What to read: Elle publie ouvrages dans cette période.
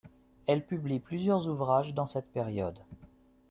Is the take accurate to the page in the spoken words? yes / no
no